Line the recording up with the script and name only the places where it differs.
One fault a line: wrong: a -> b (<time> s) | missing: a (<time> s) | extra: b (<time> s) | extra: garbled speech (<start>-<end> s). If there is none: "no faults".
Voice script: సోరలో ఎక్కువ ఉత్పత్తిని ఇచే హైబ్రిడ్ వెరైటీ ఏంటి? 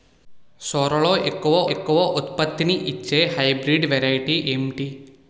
extra: ఎక్కువ (1.7 s)